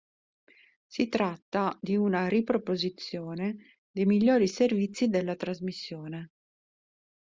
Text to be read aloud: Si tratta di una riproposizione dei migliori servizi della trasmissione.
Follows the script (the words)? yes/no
yes